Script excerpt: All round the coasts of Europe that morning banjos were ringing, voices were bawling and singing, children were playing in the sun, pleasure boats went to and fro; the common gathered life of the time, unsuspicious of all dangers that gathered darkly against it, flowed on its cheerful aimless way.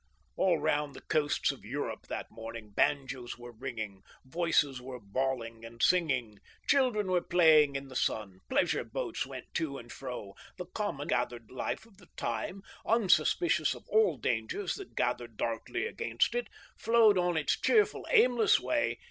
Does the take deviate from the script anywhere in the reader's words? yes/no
no